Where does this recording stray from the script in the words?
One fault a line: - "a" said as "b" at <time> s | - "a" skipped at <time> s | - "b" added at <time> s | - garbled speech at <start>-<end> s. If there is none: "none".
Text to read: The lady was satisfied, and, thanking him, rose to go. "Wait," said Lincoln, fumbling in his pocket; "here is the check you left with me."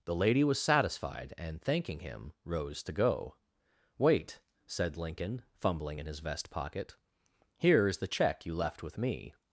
- "vest" added at 6.2 s